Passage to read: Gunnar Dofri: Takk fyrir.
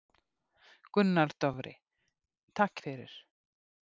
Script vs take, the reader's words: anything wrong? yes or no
no